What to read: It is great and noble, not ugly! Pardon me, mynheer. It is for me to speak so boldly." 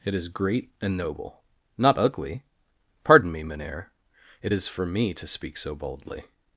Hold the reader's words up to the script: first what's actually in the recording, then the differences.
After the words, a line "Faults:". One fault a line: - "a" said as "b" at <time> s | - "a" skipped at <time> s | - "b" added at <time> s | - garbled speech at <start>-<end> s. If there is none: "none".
It is great and noble, not ugly! Pardon me, mynheer. It is for me to speak so boldly."
Faults:
none